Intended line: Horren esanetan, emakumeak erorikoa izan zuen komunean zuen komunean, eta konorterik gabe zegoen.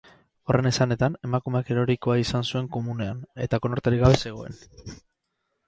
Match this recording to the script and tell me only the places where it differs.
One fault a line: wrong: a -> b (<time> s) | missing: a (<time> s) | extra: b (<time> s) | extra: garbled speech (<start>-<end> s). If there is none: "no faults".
missing: zuen komunean (3.2 s)